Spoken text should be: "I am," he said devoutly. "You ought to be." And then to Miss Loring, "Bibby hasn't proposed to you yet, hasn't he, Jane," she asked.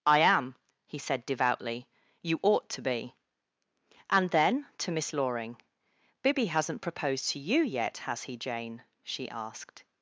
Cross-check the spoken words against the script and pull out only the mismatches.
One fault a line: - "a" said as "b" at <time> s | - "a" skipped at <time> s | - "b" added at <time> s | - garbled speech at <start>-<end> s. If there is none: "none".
- "hasn't" said as "has" at 8.0 s